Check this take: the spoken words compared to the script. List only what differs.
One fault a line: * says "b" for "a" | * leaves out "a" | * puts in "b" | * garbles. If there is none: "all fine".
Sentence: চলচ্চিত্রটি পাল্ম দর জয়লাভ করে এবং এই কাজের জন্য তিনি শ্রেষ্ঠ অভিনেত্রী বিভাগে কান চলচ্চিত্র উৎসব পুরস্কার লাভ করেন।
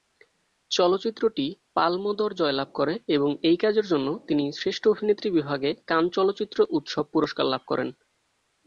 all fine